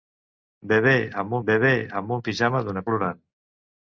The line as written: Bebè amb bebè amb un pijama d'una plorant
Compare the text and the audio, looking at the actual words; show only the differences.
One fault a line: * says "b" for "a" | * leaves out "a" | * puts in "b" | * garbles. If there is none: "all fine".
all fine